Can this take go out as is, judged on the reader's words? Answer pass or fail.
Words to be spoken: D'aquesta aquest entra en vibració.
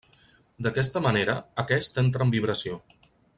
fail